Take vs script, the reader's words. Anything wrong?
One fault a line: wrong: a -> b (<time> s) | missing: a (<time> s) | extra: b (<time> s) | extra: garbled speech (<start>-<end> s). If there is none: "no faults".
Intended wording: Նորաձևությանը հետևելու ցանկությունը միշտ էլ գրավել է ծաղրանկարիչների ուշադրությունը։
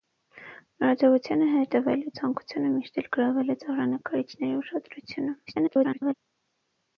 extra: garbled speech (5.5-6.1 s)